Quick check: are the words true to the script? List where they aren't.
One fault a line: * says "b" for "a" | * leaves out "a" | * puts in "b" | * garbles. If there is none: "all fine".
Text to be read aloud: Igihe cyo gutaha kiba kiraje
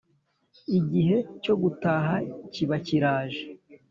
all fine